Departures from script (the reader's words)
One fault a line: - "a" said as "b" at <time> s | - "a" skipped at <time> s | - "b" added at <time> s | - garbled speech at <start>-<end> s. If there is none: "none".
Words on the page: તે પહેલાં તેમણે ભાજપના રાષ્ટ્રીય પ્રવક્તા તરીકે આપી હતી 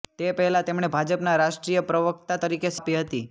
none